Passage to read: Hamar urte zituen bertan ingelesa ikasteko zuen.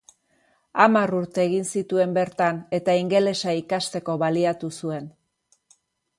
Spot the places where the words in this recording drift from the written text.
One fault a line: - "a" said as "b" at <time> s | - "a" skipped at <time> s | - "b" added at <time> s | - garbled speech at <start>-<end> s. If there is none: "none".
- "egin" added at 1.5 s
- "eta" added at 2.8 s
- "baliatu" added at 4.2 s